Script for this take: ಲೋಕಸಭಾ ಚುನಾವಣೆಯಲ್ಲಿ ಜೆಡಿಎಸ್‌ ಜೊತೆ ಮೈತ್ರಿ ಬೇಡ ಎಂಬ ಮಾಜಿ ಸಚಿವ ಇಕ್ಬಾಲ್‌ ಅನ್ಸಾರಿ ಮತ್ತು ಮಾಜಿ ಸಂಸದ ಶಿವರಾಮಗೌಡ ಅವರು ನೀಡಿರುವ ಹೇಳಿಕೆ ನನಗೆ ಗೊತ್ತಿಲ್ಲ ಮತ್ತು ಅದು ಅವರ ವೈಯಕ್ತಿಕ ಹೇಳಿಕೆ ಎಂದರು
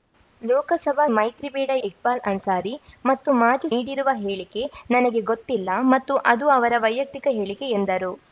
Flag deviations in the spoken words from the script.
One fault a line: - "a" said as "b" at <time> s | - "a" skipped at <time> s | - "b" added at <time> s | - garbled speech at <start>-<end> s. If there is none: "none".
- "ಚುನಾವಣೆಯಲ್ಲಿ ಜೆಡಿಎಸ್ ಜೊತೆ" skipped at 1.0 s
- "ಎಂಬ ಮಾಜಿ ಸಚಿವ" skipped at 1.7 s
- "ಸಂಸದ ಶಿವರಾಮಗೌಡ ಅವರು" skipped at 3.7 s